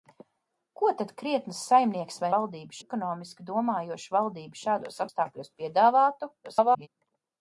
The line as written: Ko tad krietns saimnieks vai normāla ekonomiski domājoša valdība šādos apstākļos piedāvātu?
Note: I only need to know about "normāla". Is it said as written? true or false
false